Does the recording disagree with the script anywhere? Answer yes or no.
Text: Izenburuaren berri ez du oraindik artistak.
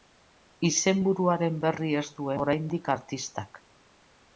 no